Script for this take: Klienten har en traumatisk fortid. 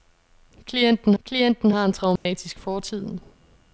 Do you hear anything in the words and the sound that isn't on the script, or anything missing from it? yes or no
yes